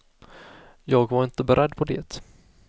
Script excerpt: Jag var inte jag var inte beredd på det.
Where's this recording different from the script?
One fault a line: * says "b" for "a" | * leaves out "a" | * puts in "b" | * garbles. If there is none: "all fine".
* leaves out "jag var inte"